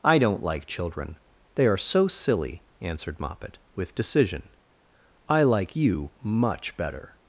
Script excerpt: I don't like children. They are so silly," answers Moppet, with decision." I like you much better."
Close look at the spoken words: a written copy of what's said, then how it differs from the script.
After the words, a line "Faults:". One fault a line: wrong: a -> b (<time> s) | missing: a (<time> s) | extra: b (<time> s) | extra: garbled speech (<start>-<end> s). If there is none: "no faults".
I don't like children. They are so silly," answered Moppet, with decision." I like you much better."
Faults:
wrong: answers -> answered (2.8 s)